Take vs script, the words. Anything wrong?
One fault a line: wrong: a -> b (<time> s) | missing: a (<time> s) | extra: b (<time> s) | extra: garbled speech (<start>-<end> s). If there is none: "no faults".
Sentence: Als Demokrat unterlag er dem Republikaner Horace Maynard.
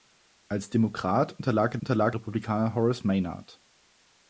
wrong: dem -> unterlag (1.8 s)